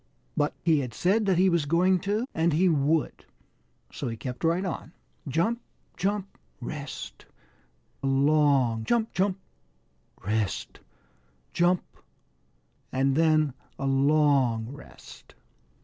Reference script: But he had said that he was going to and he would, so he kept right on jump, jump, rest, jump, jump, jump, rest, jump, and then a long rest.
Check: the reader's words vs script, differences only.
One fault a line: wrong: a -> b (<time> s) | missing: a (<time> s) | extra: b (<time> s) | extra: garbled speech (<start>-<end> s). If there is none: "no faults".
wrong: jump -> long (8.1 s)